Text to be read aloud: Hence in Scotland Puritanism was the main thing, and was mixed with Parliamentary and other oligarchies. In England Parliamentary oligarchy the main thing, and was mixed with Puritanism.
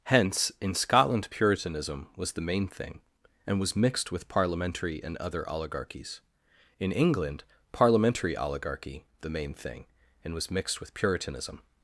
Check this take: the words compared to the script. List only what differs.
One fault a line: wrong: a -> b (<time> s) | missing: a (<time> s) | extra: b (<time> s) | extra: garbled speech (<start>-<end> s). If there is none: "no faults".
no faults